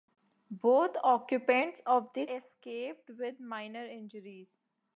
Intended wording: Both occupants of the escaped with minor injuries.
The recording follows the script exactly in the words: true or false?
true